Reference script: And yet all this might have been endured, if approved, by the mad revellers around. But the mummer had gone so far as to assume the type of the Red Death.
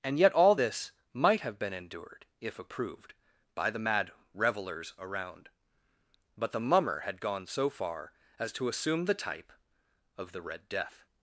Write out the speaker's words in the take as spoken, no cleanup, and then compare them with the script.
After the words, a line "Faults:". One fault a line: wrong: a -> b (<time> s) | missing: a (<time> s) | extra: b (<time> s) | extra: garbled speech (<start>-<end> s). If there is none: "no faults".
And yet all this might have been endured, if approved, by the mad revellers around. But the mummer had gone so far as to assume the type of the Red Death.
Faults:
no faults